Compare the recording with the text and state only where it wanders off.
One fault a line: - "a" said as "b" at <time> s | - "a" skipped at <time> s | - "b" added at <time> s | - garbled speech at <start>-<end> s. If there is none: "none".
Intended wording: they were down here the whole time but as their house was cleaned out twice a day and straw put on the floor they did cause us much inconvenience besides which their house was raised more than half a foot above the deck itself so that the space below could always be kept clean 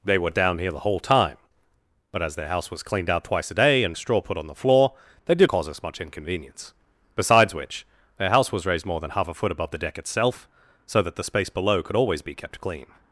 none